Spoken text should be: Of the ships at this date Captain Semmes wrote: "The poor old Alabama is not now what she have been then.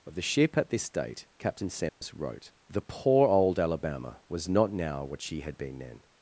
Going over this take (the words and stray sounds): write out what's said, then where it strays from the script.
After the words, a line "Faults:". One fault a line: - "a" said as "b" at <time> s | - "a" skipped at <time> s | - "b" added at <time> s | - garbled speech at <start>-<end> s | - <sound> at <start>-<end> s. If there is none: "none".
Of the ship at this date Captain Semmes wrote: "The poor old Alabama was not now what she had been then.
Faults:
- "ships" said as "ship" at 0.2 s
- dropout at 1.9-2.0 s
- "is" said as "was" at 4.3 s
- "have" said as "had" at 5.4 s